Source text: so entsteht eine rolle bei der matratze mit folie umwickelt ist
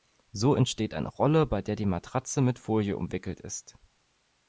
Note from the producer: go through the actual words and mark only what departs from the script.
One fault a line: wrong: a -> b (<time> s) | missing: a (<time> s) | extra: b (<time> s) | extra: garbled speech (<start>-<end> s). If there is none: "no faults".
extra: die (1.8 s)